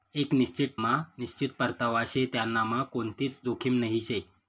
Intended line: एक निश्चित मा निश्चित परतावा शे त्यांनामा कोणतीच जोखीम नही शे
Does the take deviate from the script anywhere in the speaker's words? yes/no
no